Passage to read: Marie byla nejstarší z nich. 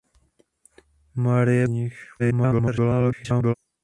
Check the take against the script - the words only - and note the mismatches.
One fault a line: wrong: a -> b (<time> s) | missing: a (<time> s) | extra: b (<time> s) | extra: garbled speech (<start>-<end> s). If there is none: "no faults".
missing: byla nejstarší (1.7 s)
extra: garbled speech (2.2-3.5 s)